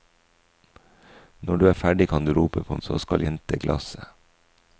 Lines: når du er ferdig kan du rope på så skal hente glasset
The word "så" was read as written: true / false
true